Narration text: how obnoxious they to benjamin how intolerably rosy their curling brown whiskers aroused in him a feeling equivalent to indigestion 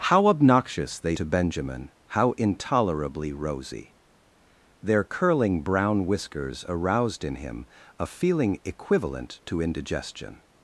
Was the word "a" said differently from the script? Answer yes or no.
no